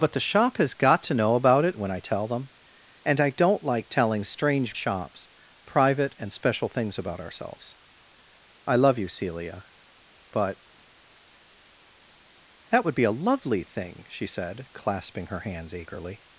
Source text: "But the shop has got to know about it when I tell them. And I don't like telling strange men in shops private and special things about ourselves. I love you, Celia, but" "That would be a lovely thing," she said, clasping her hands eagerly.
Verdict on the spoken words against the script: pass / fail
fail